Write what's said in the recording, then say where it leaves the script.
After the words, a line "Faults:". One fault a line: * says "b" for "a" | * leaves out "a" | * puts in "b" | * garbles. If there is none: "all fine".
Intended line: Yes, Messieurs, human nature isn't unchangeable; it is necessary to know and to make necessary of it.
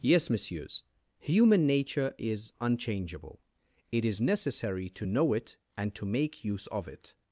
Yes, Messieurs, human nature is unchangeable; it is necessary to know it and to make use of it.
Faults:
* says "is" for "isn't"
* puts in "it"
* says "use" for "necessary"